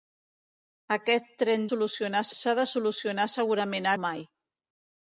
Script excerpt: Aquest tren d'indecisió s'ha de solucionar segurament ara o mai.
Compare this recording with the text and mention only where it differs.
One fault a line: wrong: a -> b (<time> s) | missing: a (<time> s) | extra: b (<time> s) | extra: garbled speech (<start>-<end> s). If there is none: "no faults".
wrong: d'indecisió -> solucionar (1.7 s)
missing: ara (3.9 s)